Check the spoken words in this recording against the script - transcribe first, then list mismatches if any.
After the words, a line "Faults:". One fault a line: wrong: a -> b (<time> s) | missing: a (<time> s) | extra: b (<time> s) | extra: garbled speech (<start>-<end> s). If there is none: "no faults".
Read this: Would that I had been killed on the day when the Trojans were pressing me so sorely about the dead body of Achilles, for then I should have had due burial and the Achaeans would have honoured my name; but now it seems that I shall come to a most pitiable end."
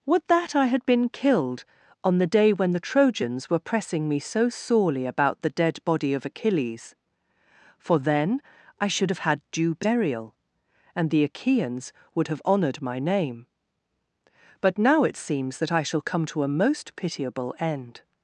Would that I had been killed on the day when the Trojans were pressing me so sorely about the dead body of Achilles, for then I should have had due burial and the Achaeans would have honoured my name; but now it seems that I shall come to a most pitiable end."
Faults:
no faults